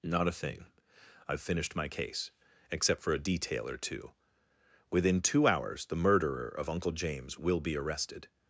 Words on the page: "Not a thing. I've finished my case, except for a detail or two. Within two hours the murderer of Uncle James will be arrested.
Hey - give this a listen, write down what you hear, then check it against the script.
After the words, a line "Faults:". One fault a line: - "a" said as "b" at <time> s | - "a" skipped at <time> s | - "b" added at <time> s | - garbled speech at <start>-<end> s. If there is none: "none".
"Not a thing. I've finished my case, except for a detail or two. Within two hours the murderer of Uncle James will be arrested.
Faults:
none